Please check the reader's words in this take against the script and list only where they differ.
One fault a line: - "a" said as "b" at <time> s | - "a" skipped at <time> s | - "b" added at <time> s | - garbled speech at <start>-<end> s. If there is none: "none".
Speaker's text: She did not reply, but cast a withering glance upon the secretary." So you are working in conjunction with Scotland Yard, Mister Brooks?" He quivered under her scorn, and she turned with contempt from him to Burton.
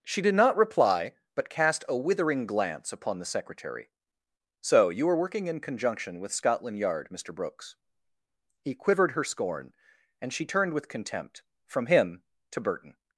- "under" skipped at 9.1 s